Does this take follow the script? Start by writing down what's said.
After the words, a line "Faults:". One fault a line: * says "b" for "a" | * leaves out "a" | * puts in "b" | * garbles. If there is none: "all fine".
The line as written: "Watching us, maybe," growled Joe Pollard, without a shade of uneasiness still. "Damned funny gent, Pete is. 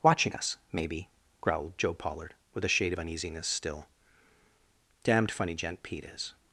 "Watching us, maybe," growled Joe Pollard, with a shade of uneasiness still. "Damned funny gent, Pete is.
Faults:
* says "with" for "without"